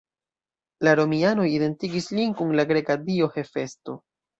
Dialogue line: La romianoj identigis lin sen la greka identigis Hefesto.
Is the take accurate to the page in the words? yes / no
no